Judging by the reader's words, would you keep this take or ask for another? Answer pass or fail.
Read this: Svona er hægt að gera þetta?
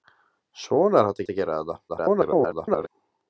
fail